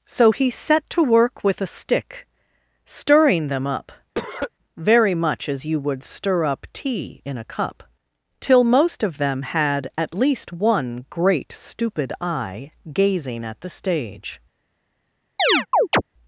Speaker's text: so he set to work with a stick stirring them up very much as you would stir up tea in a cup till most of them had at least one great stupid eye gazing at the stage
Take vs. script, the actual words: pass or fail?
pass